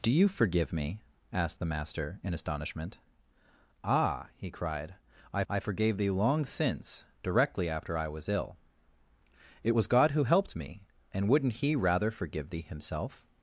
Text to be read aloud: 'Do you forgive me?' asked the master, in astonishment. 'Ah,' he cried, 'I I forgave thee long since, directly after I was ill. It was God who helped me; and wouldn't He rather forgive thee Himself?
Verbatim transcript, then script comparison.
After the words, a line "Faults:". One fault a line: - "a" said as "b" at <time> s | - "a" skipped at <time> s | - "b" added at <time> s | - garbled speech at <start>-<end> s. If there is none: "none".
'Do you forgive me?' asked the master, in astonishment. 'Ah,' he cried, 'I I forgave thee long since, directly after I was ill. It was God who helped me; and wouldn't He rather forgive thee Himself?
Faults:
none